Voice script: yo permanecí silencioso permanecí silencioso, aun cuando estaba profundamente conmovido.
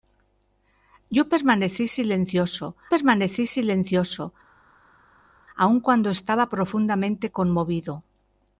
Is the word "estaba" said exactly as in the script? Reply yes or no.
yes